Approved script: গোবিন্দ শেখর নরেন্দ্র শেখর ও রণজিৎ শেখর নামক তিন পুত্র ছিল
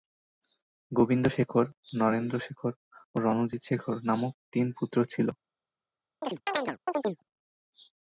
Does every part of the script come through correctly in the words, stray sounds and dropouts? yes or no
no